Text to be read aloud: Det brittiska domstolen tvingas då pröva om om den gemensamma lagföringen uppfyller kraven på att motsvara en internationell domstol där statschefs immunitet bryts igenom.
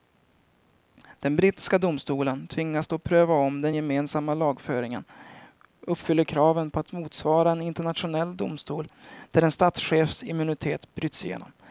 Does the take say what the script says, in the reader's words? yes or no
no